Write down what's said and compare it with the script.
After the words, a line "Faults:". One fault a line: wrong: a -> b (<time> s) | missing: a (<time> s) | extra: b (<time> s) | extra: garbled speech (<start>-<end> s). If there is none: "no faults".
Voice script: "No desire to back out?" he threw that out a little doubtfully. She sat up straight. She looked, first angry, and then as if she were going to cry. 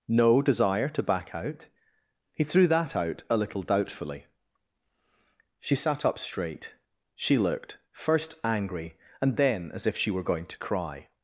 "No desire to back out?" he threw that out a little doubtfully. She sat up straight. She looked, first angry, and then as if she were going to cry.
Faults:
no faults